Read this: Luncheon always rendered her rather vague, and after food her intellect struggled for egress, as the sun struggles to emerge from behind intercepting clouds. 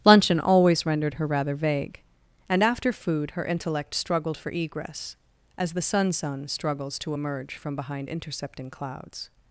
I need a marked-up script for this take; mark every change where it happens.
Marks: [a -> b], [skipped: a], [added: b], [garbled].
Luncheon always rendered her rather vague, and after food her intellect struggled for egress, as the sun [added: sun] struggles to emerge from behind intercepting clouds.